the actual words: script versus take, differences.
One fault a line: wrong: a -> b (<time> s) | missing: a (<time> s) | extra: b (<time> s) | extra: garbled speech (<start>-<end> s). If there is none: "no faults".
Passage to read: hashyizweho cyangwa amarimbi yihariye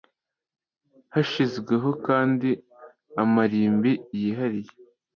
wrong: cyangwa -> kandi (2.1 s)